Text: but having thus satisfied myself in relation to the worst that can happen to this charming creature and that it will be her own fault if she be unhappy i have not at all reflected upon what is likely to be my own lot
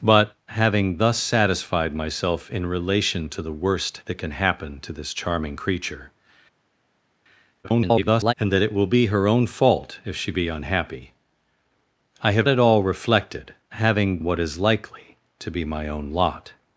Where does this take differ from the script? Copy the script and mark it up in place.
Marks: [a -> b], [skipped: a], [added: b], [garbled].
but having thus satisfied myself in relation to the worst that can happen to this charming creature [garbled] and that it will be her own fault if she be unhappy i have [skipped: not] at all reflected [upon -> having] what is likely to be my own lot